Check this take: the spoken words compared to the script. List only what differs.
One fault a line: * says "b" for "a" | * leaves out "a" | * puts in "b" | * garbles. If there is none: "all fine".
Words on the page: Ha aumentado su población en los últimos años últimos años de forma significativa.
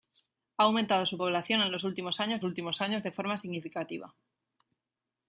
all fine